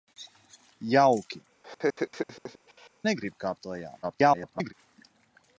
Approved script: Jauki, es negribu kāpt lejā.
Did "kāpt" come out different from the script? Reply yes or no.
no